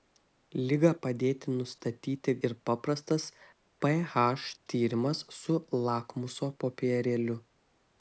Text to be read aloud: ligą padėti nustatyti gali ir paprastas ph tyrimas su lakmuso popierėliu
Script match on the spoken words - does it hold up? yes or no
no